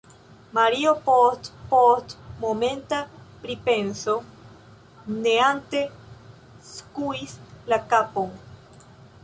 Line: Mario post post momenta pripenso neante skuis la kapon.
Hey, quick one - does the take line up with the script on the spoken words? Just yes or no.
yes